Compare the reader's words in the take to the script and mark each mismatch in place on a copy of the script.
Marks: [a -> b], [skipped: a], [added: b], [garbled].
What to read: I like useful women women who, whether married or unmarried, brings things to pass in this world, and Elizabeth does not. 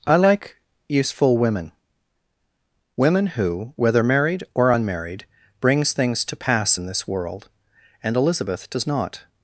I like useful women women who, whether married or unmarried, brings things to pass in this world, and Elizabeth does not.